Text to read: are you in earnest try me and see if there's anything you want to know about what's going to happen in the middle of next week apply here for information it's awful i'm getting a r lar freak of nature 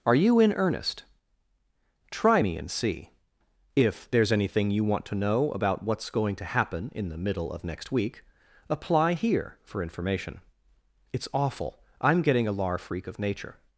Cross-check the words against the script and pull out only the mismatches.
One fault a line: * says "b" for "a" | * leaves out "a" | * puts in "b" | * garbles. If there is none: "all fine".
* leaves out "r"